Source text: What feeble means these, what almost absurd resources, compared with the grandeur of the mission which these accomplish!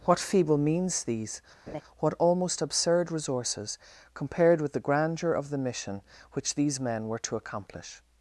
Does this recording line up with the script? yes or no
no